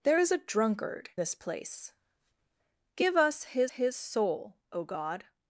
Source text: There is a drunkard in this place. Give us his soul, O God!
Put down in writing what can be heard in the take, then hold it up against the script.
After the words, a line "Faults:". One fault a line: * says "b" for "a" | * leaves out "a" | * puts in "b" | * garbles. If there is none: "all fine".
There is a drunkard this place. Give us his his soul, O God!
Faults:
* leaves out "in"
* puts in "his"